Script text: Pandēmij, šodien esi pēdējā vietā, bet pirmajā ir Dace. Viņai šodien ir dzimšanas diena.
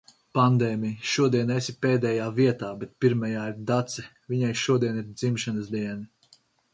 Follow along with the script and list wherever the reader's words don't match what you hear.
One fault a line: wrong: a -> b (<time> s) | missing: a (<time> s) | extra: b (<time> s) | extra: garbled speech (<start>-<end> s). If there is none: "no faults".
no faults